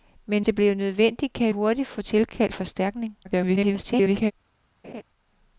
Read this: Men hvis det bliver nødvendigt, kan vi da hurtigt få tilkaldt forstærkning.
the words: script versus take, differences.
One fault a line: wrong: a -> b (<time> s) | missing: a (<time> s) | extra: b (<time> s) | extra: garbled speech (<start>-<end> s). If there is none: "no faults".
missing: hvis (0.5 s)
missing: vi da (1.5 s)
extra: garbled speech (3.2-4.3 s)